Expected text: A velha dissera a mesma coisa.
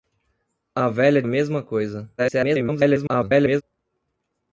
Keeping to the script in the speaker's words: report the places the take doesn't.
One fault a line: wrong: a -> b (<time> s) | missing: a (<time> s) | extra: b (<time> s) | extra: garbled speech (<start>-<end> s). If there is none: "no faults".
missing: dissera (1.2 s)
extra: garbled speech (2.2-3.6 s)